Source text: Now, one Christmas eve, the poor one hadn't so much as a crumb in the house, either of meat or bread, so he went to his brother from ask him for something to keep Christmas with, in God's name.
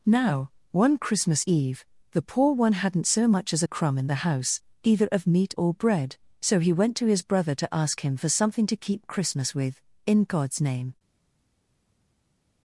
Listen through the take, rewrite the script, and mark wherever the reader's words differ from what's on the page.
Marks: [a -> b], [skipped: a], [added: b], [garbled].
Now, one Christmas eve, the poor one hadn't so much as a crumb in the house, either of meat or bread, so he went to his brother [from -> to] ask him for something to keep Christmas with, in God's name.